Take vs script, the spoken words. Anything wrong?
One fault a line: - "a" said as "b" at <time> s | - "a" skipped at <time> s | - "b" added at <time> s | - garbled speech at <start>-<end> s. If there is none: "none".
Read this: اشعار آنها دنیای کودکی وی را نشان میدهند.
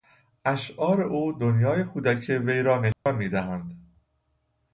- "آنها" said as "او" at 1.0 s